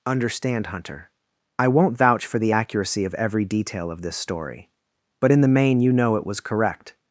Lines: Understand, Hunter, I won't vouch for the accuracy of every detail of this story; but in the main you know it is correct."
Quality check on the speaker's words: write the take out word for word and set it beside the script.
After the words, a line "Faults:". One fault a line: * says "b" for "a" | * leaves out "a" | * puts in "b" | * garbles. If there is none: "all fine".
Understand, Hunter, I won't vouch for the accuracy of every detail of this story; but in the main you know it was correct."
Faults:
* says "was" for "is"